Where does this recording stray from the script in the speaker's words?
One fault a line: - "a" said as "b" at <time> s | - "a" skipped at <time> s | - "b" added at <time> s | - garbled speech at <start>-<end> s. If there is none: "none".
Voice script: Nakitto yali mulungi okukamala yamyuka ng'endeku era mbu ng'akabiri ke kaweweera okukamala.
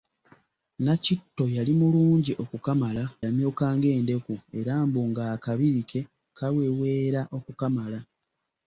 none